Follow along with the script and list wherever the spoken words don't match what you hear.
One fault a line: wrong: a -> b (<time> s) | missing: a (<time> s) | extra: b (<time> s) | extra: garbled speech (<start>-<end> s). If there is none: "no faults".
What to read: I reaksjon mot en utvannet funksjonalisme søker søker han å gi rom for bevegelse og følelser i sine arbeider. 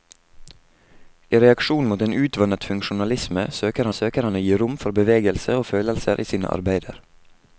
no faults